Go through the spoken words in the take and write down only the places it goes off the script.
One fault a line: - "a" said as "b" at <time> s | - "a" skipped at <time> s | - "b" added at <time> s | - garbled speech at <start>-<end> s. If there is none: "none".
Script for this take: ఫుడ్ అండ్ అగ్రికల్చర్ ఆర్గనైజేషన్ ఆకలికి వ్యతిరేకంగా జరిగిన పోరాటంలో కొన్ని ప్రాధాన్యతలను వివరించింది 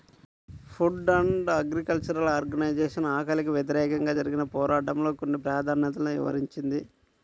none